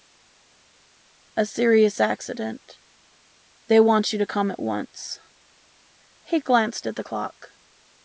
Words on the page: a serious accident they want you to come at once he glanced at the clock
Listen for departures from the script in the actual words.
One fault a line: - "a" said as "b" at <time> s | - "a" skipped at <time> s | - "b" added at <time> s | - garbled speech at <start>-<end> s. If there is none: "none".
none